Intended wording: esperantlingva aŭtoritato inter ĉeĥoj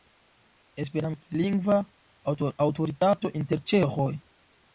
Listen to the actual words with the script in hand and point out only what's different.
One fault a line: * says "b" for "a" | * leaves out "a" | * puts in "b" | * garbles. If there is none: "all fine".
all fine